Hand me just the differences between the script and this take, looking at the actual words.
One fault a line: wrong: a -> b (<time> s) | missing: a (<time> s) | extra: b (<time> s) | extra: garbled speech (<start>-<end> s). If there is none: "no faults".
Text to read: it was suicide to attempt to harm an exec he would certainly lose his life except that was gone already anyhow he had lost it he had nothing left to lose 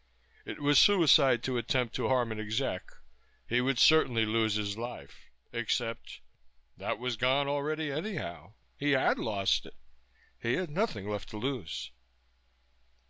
no faults